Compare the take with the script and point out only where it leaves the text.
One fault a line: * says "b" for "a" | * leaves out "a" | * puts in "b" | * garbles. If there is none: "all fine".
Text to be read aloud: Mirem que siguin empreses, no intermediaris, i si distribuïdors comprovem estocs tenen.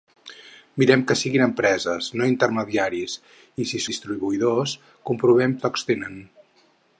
all fine